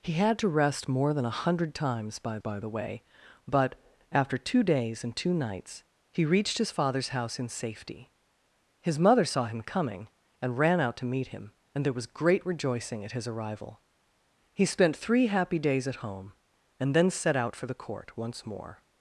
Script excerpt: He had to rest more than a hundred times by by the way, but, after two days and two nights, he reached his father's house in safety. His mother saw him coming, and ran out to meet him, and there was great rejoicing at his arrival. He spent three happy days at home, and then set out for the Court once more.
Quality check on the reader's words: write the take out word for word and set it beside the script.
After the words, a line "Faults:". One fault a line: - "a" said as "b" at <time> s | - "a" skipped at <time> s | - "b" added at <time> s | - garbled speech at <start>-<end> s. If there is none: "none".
He had to rest more than a hundred times by by the way, but, after two days and two nights, he reached his father's house in safety. His mother saw him coming, and ran out to meet him, and there was great rejoicing at his arrival. He spent three happy days at home, and then set out for the Court once more.
Faults:
none